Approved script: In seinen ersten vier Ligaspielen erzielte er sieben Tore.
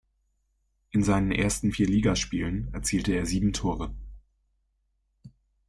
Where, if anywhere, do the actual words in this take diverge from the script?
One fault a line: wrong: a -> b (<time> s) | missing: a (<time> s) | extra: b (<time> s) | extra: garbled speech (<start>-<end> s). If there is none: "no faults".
no faults